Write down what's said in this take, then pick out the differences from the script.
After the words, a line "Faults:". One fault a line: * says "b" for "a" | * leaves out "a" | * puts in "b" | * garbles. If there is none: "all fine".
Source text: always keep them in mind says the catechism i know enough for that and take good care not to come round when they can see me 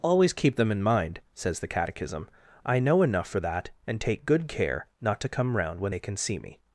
always keep them in mind says the catechism i know enough for that and take good care not to come round when they can see me
Faults:
all fine